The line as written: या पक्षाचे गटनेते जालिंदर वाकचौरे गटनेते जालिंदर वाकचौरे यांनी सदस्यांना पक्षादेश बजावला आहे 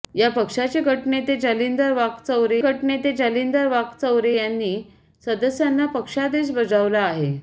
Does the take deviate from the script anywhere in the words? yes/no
no